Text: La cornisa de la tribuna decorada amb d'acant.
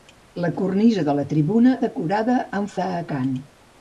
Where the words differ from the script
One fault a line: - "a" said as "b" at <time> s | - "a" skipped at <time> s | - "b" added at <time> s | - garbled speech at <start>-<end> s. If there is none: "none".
none